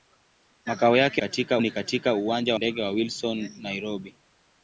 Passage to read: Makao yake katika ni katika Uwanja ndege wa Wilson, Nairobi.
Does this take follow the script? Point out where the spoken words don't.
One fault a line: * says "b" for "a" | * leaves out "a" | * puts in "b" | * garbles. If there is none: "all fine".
all fine